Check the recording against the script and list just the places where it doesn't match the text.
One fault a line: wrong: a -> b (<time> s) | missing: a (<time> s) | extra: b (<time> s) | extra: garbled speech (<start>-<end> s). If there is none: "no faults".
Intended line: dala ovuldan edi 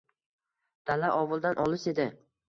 extra: olis (1.6 s)